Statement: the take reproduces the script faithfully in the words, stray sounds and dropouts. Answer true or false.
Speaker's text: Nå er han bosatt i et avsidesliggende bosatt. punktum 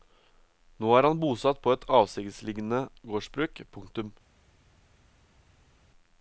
false